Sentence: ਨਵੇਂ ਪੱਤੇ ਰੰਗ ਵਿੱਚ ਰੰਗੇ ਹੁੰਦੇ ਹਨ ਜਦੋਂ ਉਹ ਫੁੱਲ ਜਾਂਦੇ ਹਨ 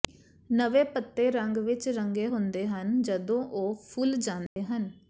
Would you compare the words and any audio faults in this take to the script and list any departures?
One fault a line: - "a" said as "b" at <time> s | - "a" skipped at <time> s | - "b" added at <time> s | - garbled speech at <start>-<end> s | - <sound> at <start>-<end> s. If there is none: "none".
- dropout at 4.5-4.6 s